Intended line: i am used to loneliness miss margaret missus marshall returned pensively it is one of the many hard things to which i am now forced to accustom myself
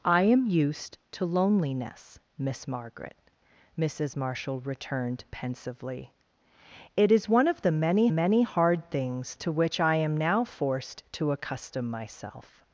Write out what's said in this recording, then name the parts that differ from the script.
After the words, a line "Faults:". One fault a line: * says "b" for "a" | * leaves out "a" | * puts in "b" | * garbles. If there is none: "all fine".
i am used to loneliness miss margaret missus marshall returned pensively it is one of the many many hard things to which i am now forced to accustom myself
Faults:
* puts in "many"